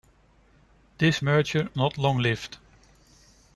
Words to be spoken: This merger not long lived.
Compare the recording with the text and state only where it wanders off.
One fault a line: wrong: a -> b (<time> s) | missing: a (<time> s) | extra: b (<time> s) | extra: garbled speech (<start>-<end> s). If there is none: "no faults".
no faults